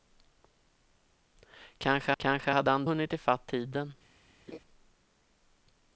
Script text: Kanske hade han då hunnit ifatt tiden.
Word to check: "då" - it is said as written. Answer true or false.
false